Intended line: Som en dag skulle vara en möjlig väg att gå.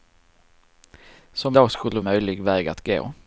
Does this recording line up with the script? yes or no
no